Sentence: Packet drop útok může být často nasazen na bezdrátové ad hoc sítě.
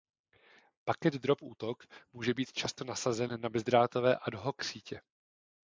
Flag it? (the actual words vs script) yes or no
no